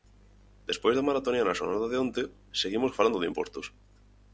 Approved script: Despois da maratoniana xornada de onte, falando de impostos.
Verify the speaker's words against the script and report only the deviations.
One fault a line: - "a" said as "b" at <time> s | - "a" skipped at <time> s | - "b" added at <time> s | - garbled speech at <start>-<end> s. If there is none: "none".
- "seguimos" added at 2.6 s